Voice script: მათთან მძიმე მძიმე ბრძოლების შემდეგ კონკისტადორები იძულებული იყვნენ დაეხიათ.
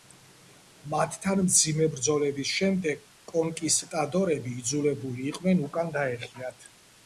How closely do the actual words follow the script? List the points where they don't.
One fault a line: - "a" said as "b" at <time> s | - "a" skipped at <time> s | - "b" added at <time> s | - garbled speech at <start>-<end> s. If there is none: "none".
- "მძიმე" skipped at 1.9 s
- "უკან" added at 5.7 s